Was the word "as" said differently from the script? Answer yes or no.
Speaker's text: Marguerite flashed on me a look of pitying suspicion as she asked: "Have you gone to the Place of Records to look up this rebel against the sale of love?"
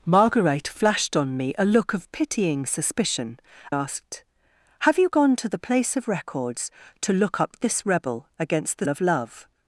yes